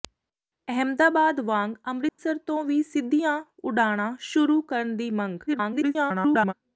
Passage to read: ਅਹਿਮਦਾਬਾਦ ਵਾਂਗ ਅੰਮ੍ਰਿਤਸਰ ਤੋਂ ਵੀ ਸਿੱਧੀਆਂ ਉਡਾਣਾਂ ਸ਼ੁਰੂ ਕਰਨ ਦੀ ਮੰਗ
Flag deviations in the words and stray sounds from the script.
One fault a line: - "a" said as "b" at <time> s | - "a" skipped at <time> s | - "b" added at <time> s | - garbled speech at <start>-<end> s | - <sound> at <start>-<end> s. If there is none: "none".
- dropout at 2.1-2.2 s
- garbled speech at 5.5-6.5 s